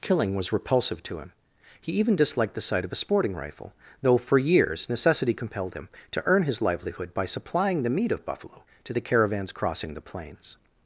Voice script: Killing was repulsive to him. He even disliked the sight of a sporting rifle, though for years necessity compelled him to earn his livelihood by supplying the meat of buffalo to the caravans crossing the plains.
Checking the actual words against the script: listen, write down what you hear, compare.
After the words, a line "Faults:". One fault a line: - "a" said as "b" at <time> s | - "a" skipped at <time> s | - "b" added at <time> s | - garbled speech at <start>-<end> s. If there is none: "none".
Killing was repulsive to him. He even disliked the sight of a sporting rifle, though for years necessity compelled him to earn his livelihood by supplying the meat of buffalo to the caravans crossing the plains.
Faults:
none